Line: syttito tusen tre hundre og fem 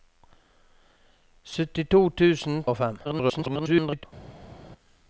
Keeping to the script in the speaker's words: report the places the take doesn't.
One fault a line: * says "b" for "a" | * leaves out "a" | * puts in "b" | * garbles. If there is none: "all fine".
* leaves out "tre hundre"
* garbles